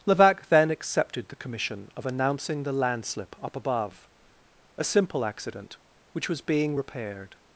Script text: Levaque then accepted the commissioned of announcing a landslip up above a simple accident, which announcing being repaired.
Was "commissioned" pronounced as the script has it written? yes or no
no